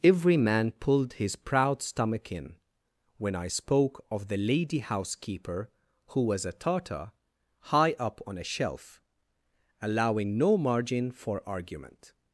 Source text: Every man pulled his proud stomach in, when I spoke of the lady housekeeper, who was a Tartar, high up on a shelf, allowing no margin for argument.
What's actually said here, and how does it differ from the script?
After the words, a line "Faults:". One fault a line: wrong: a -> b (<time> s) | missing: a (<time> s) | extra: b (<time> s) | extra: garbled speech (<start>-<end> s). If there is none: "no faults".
Every man pulled his proud stomach in, when I spoke of the lady housekeeper, who was a Tartar, high up on a shelf, allowing no margin for argument.
Faults:
no faults